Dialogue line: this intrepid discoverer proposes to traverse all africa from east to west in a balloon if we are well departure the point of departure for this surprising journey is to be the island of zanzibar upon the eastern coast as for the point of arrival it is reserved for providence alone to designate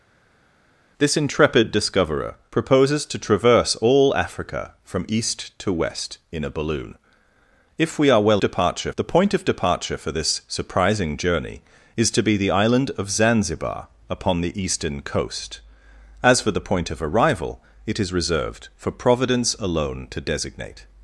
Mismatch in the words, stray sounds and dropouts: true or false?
false